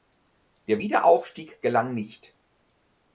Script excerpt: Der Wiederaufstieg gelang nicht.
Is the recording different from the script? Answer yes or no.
no